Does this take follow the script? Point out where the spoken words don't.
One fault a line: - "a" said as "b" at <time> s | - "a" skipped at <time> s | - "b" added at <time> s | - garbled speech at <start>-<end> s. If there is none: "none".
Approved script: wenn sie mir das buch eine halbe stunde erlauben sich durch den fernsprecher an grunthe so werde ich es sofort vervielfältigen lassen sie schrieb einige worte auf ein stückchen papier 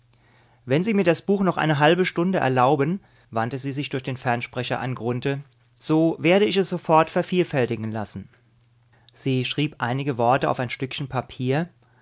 - "noch" added at 1.4 s
- "wandte sie" added at 3.3 s